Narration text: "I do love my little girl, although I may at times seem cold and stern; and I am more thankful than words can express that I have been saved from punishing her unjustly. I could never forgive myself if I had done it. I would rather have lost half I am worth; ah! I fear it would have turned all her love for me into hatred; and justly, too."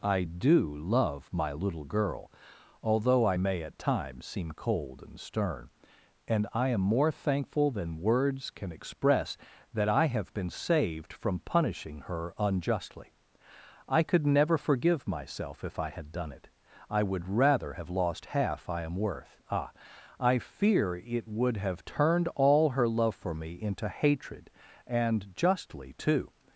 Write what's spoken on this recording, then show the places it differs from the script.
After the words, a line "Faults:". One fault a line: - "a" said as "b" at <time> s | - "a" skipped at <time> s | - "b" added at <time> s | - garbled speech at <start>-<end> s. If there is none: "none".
"I do love my little girl, although I may at times seem cold and stern; and I am more thankful than words can express that I have been saved from punishing her unjustly. I could never forgive myself if I had done it. I would rather have lost half I am worth; ah! I fear it would have turned all her love for me into hatred; and justly, too."
Faults:
none